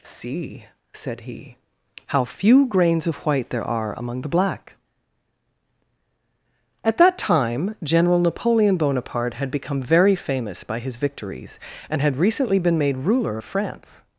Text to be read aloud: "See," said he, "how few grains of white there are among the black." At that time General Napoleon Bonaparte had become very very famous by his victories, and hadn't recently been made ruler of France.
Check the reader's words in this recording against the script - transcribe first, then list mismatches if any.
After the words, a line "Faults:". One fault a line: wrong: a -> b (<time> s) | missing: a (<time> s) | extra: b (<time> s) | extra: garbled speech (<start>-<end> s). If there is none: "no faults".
"See," said he, "how few grains of white there are among the black." At that time General Napoleon Bonaparte had become very famous by his victories, and had recently been made ruler of France.
Faults:
missing: very (10.2 s)
wrong: hadn't -> had (12.0 s)